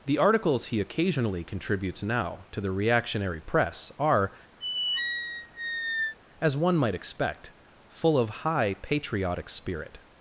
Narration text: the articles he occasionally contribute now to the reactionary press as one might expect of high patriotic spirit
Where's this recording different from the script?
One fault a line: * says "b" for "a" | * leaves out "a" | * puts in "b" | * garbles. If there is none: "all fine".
* says "contributes" for "contribute"
* puts in "are"
* puts in "full"